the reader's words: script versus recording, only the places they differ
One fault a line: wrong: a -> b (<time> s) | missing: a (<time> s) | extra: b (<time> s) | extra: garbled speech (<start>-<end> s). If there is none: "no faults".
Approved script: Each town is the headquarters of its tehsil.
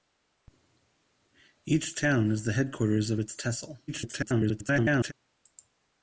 extra: garbled speech (3.9-5.1 s)